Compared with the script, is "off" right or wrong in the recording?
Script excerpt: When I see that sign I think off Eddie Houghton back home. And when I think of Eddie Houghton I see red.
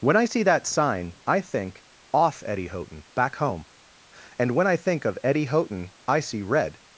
right